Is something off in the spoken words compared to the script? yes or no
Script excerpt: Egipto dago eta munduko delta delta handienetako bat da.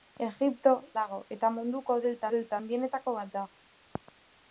no